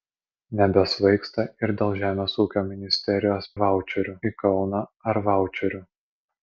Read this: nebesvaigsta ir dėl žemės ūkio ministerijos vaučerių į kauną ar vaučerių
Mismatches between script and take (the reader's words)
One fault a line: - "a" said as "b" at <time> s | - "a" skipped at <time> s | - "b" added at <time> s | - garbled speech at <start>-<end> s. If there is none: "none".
none